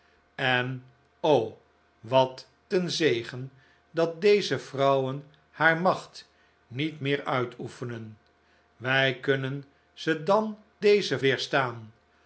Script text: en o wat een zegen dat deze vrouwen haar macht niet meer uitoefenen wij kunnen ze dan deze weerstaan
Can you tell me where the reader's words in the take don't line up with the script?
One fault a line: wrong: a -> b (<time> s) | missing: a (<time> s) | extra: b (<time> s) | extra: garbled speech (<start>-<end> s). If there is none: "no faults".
no faults